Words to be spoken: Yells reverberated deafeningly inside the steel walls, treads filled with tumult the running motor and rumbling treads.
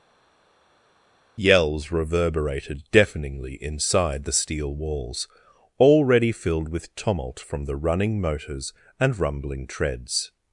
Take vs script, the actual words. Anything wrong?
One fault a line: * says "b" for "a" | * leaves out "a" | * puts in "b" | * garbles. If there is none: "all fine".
* says "already" for "treads"
* puts in "from"
* says "motors" for "motor"